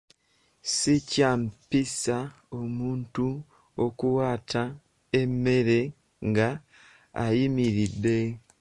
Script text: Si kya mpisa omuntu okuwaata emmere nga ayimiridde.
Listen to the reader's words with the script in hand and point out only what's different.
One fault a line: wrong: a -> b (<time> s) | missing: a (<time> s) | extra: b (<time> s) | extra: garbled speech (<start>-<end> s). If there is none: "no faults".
no faults